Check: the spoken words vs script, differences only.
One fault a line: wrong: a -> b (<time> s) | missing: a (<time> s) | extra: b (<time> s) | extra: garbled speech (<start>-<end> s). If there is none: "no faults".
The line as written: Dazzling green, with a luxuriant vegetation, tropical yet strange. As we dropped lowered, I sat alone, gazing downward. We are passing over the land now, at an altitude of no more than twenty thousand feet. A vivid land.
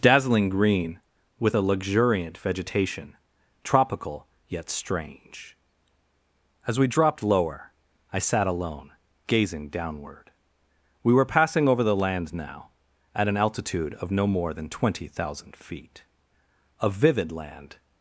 wrong: lowered -> lower (7.2 s)
wrong: are -> were (11.1 s)